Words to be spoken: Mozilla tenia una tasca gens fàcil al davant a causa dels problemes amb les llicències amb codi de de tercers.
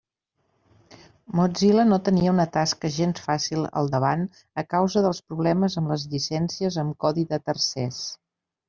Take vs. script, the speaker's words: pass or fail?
fail